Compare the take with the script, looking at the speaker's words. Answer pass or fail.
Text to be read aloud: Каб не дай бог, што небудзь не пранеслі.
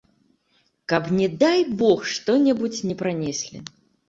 pass